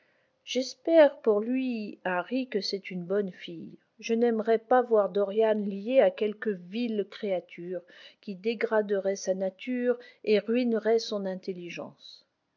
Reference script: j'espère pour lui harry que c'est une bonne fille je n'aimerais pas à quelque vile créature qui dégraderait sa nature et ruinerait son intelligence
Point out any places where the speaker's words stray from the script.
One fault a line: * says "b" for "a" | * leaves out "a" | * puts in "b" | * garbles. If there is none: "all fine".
* puts in "voir dorian lié"